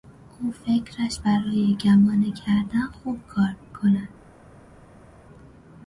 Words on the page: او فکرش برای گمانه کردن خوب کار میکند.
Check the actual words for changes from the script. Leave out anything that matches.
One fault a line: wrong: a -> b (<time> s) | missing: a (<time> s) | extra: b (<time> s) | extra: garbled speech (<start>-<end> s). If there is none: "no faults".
no faults